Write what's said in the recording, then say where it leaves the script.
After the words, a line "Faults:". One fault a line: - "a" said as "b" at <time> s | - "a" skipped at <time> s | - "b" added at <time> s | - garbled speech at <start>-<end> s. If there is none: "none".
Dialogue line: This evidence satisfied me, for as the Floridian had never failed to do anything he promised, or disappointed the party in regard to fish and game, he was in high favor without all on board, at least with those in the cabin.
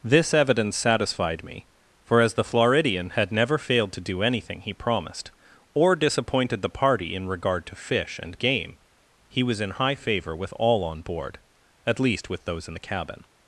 This evidence satisfied me, for as the Floridian had never failed to do anything he promised, or disappointed the party in regard to fish and game, he was in high favor with all on board, at least with those in the cabin.
Faults:
- "without" said as "with" at 10.3 s